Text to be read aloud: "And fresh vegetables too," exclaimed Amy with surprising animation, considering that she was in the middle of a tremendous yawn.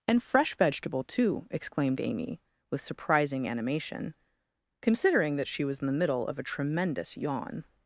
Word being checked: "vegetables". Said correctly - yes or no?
no